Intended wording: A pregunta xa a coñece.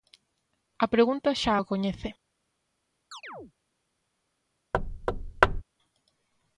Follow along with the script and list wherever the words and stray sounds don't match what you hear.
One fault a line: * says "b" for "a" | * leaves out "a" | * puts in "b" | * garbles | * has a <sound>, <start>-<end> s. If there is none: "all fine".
* has a chirp, 3.1-3.5 s
* has a thud, 4.7-5.6 s